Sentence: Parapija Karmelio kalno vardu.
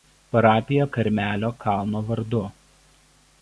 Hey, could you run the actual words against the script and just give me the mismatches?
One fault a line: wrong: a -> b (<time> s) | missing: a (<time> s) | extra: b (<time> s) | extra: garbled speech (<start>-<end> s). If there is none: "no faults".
no faults